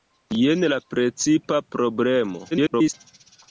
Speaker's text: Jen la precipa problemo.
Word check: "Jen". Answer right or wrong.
right